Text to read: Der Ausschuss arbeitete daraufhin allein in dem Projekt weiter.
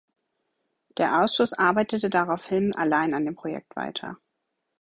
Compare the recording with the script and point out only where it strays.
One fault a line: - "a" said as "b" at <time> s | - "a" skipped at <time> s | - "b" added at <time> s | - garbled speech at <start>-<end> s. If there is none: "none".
- "in" said as "an" at 3.1 s